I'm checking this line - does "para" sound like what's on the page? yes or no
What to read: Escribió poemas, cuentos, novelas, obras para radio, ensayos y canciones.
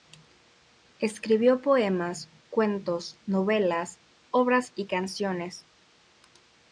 no